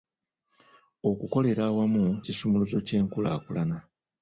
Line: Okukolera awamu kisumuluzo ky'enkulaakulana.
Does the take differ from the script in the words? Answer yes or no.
no